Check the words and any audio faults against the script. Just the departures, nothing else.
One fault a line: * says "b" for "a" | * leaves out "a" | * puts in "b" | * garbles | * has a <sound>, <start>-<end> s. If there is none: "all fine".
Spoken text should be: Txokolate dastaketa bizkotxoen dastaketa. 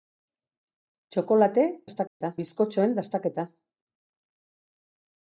* has a dropout, 2.1-2.2 s